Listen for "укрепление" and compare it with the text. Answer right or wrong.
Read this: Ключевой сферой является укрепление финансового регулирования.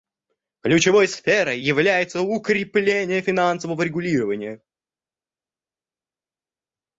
right